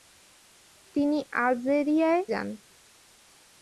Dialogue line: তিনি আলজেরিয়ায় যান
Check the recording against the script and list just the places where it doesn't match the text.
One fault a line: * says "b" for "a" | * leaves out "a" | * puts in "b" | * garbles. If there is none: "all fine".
all fine